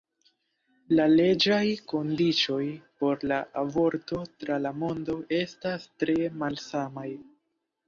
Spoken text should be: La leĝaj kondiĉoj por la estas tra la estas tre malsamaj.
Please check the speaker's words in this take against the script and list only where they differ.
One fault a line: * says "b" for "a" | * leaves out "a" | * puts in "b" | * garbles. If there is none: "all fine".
* says "aborto" for "estas"
* puts in "mondo"